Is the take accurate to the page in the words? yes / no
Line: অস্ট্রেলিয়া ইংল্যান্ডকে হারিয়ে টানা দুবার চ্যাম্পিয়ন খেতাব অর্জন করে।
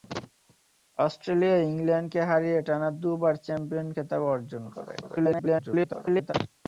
no